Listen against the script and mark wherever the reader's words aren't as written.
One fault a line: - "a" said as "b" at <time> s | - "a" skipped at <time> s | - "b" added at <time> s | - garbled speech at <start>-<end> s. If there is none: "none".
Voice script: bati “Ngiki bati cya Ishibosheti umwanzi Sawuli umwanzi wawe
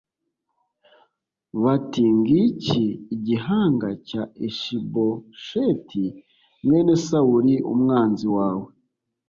- "bati" said as "igihanga" at 3.1 s
- "umwanzi" said as "mwene" at 6.6 s